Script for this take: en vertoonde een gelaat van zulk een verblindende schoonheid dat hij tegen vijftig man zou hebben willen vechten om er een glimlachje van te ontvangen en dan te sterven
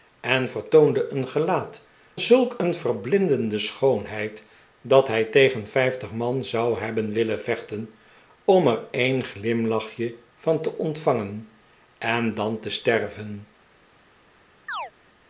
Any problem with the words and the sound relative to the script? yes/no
yes